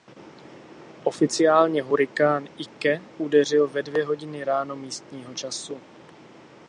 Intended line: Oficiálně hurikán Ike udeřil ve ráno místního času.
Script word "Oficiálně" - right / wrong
right